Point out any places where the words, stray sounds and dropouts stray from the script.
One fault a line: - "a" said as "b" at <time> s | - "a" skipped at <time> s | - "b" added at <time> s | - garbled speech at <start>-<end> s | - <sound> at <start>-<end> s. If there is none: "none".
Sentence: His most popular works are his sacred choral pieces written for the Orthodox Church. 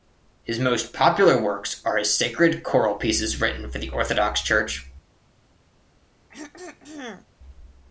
- throat clearing at 6.3-7.3 s